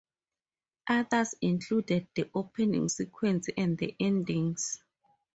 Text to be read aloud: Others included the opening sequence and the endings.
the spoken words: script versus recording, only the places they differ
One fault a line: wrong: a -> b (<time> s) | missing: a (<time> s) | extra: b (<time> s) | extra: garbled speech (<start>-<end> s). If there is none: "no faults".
no faults